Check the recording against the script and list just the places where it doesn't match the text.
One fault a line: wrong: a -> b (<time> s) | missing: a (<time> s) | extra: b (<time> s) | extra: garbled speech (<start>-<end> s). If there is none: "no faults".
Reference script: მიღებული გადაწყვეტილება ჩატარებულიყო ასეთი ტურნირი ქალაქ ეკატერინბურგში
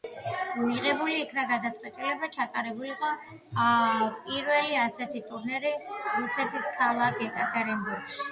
extra: იქნა (1.2 s)
extra: პირველი (4.3 s)
extra: რუსეთის (6.2 s)